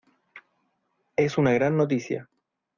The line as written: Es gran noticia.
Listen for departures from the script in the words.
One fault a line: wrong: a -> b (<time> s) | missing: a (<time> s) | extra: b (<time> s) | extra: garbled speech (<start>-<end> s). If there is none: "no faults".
extra: una (1.4 s)